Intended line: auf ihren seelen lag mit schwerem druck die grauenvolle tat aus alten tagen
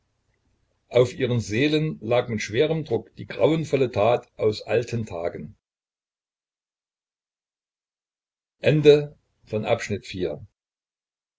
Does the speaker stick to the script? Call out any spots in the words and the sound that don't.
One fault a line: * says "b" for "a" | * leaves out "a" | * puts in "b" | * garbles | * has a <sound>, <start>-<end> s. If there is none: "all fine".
all fine